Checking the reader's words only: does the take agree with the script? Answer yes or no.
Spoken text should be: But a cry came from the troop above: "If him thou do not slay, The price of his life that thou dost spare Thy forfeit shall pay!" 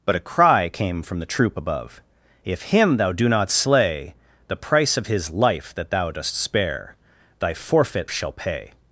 yes